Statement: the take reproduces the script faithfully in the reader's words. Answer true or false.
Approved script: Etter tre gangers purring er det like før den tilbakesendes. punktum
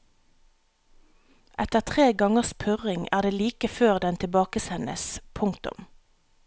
true